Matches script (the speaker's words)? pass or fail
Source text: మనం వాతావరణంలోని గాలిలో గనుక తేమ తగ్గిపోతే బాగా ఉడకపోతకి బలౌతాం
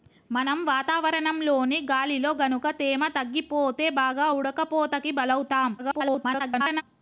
fail